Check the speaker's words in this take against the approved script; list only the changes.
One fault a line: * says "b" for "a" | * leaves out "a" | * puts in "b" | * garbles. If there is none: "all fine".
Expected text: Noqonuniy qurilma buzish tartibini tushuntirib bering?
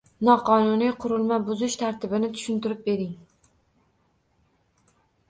all fine